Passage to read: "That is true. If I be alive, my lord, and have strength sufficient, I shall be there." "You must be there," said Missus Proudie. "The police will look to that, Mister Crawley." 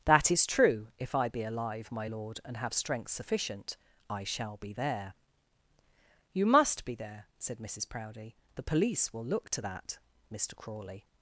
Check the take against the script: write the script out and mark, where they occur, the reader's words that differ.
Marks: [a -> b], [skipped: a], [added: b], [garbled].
"That is true. If I be alive, my lord, and have strength sufficient, I shall be there." "You must be there," said Missus Proudie. "The police will look to that, Mister Crawley."